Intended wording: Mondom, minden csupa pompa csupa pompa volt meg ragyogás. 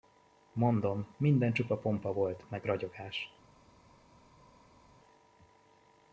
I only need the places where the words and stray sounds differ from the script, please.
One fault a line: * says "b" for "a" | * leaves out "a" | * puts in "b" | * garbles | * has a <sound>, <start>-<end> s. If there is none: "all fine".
* leaves out "csupa pompa"